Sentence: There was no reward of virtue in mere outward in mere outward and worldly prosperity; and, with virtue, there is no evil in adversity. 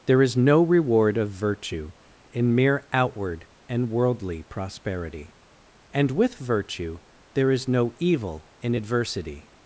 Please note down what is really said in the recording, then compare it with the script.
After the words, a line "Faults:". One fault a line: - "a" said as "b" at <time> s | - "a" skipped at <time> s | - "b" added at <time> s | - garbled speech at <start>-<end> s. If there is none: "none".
There is no reward of virtue in mere outward and worldly prosperity; and, with virtue, there is no evil in adversity.
Faults:
- "was" said as "is" at 0.2 s
- "in mere outward" skipped at 3.5 s